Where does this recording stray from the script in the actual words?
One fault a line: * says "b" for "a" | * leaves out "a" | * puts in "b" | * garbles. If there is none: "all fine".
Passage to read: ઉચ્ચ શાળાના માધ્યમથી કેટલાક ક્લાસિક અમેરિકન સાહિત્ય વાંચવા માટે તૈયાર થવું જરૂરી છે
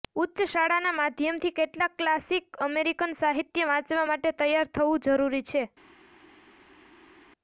all fine